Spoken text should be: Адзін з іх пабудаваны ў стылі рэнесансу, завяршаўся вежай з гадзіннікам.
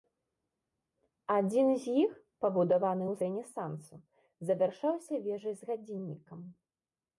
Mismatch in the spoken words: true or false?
true